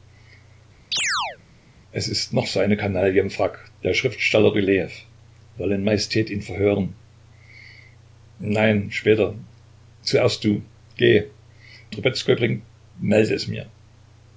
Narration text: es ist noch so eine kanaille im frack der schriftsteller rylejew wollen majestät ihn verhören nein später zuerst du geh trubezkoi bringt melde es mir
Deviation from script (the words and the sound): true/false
true